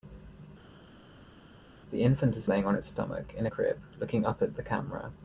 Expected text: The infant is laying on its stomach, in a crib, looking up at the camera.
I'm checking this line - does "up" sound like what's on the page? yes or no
yes